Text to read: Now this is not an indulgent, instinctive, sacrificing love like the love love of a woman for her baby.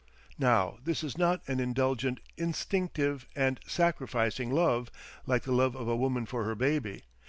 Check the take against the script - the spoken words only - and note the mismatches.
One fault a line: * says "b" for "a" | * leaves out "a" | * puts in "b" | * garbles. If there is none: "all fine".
* puts in "and"
* leaves out "love"